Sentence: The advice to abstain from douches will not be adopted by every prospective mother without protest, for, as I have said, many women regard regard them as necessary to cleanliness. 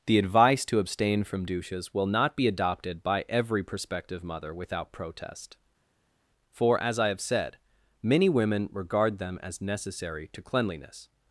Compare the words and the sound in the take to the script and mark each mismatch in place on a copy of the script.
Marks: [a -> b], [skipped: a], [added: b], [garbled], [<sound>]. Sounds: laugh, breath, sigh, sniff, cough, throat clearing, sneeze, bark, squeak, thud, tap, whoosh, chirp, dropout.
The advice to abstain from douches will not be adopted by every prospective mother without protest, for, as I have said, many women regard [skipped: regard] them as necessary to cleanliness.